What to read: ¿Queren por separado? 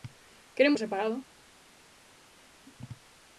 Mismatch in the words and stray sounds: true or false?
false